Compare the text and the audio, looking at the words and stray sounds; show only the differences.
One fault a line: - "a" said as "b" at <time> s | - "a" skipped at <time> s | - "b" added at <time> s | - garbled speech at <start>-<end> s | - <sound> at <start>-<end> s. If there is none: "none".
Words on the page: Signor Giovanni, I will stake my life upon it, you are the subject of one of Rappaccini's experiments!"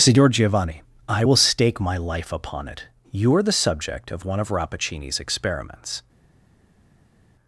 none